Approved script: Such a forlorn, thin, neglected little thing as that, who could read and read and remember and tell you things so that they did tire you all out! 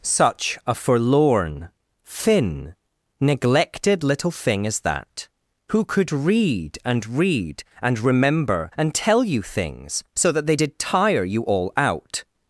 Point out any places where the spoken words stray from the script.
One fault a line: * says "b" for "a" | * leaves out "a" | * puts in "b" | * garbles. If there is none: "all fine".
all fine